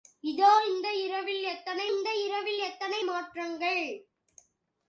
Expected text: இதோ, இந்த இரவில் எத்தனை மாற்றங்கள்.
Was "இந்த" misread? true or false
false